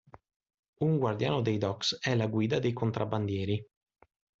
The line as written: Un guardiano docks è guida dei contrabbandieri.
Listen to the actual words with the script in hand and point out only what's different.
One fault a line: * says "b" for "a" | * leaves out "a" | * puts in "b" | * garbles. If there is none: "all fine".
* puts in "dei"
* puts in "la"